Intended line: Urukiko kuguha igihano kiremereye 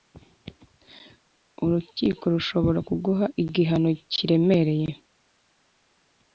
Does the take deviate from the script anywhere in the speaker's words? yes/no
yes